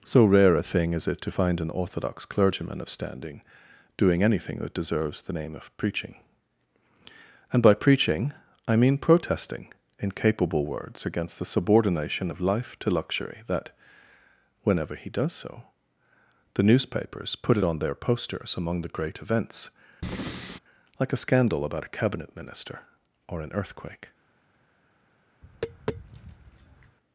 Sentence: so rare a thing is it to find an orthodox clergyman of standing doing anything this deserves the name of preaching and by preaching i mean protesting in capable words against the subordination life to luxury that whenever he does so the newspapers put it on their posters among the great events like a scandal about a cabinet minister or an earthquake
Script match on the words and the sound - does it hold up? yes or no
no